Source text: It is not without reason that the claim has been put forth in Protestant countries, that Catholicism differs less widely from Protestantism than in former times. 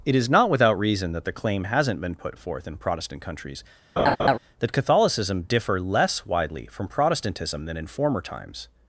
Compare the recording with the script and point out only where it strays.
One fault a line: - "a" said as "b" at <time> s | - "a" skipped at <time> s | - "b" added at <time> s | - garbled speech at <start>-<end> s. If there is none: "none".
- "has" said as "hasn't" at 1.6 s
- "differs" said as "differ" at 5.4 s